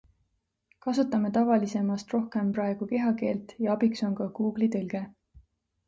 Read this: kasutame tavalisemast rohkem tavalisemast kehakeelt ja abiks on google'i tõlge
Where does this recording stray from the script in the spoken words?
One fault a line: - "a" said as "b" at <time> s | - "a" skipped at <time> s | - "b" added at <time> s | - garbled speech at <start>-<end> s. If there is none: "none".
- "tavalisemast" said as "praegu" at 2.6 s
- "ka" added at 4.2 s